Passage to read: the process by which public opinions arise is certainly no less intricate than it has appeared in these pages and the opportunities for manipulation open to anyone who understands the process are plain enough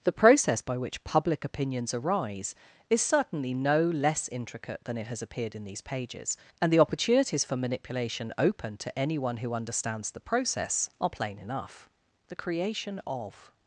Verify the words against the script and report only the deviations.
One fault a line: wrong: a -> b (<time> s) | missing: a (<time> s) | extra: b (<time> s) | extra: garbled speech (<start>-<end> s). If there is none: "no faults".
extra: the creation of (12.3 s)